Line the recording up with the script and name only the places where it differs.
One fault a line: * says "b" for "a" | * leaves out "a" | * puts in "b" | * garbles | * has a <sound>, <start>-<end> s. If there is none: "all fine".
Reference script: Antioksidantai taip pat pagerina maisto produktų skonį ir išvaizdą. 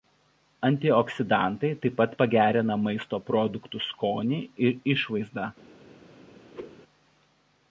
* has a whoosh, 6.5-6.8 s